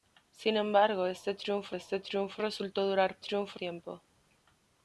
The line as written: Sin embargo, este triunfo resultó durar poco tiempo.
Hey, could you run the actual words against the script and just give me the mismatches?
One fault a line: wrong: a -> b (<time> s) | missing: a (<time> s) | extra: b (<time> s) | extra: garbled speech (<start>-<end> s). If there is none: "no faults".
extra: este triunfo (1.7 s)
wrong: poco -> triunfo (3.2 s)